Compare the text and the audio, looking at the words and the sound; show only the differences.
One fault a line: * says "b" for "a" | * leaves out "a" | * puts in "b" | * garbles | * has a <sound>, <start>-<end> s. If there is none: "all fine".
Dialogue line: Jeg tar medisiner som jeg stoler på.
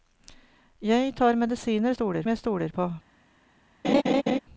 * says "stoler" for "som"
* has a laugh, 3.8-4.4 s